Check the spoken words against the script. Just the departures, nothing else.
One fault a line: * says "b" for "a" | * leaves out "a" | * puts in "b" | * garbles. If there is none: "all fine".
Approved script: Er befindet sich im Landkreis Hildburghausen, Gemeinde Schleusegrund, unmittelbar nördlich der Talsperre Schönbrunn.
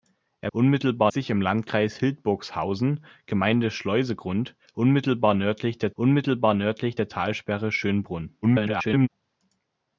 * says "unmittelbar" for "befindet"
* puts in "unmittelbar nördlich der"
* garbles